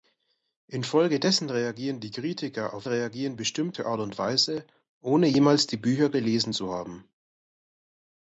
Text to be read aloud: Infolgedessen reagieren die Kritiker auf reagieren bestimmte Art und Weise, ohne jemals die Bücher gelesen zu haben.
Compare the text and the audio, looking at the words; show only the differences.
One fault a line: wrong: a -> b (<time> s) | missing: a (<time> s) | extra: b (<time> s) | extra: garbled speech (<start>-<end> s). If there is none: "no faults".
no faults